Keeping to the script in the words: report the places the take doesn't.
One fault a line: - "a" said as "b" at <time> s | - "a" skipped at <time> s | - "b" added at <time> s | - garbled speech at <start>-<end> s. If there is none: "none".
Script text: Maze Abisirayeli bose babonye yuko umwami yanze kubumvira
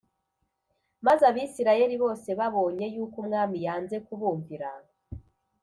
none